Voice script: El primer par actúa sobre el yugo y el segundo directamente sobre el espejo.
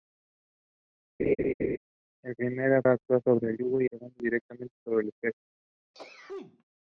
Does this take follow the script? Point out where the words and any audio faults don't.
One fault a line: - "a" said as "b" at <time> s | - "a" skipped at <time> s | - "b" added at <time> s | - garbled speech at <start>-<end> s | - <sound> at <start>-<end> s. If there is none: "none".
- laugh at 1.2-1.8 s
- "par" skipped at 2.8 s
- "el" skipped at 3.9 s
- sneeze at 5.9-6.6 s